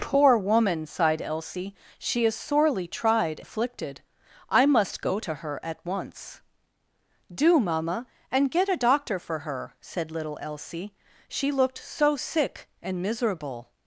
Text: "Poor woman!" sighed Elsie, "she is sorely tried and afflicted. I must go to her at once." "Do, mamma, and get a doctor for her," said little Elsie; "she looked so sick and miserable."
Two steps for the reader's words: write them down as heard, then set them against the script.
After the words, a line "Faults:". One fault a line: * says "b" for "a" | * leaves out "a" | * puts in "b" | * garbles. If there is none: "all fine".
"Poor woman!" sighed Elsie, "she is sorely tried afflicted. I must go to her at once." "Do, mamma, and get a doctor for her," said little Elsie; "she looked so sick and miserable."
Faults:
* leaves out "and"